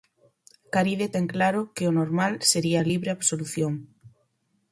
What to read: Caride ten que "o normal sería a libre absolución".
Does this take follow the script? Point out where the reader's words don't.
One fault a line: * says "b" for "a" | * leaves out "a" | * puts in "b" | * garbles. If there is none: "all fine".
* puts in "claro"